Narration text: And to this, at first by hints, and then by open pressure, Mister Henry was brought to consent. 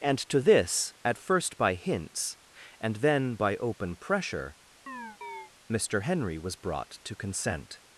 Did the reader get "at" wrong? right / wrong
right